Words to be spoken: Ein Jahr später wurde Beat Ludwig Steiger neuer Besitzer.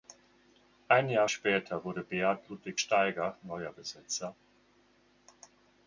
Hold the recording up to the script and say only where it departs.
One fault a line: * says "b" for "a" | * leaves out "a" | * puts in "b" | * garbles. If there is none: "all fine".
all fine